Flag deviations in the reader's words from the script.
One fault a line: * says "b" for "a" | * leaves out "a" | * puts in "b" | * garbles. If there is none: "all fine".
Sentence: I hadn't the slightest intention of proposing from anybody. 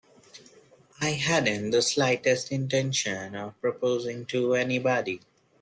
* says "to" for "from"